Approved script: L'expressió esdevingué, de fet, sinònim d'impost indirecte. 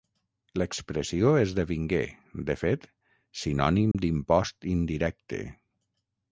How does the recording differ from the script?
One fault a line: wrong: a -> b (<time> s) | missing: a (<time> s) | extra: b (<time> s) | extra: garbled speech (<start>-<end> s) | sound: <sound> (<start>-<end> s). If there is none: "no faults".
sound: dropout (3.9-3.9 s)